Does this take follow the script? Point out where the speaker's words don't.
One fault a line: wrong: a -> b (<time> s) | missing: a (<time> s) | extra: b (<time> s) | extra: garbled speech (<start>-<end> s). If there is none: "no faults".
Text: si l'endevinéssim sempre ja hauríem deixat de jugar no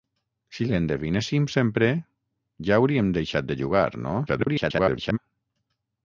extra: garbled speech (4.3-5.2 s)